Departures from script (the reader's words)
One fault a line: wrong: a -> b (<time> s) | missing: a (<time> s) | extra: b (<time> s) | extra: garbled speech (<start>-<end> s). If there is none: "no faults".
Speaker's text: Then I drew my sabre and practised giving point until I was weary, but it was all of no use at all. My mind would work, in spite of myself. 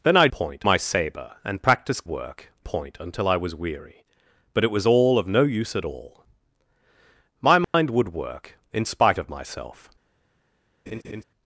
wrong: drew -> point (0.3 s)
wrong: giving -> work (2.1 s)